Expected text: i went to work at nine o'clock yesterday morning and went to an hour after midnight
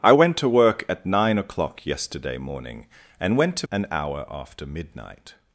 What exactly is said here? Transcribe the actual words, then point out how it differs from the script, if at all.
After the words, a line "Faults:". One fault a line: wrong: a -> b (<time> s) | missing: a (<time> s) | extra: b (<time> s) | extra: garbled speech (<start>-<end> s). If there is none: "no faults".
i went to work at nine o'clock yesterday morning and went to an hour after midnight
Faults:
no faults